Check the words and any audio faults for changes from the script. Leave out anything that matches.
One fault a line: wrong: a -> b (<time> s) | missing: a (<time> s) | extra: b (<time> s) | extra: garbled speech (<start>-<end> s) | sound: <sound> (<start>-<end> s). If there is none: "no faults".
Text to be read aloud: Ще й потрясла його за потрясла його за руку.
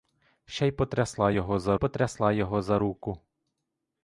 no faults